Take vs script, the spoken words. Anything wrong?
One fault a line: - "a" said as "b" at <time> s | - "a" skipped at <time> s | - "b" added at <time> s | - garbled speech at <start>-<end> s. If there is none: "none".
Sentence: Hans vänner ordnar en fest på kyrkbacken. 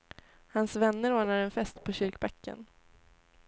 none